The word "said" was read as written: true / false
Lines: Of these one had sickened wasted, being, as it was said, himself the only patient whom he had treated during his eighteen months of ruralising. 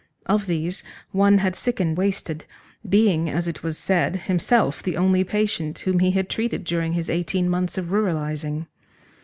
true